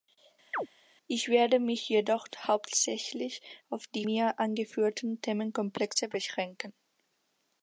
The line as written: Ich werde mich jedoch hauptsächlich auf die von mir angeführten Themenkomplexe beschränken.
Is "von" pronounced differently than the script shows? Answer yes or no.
yes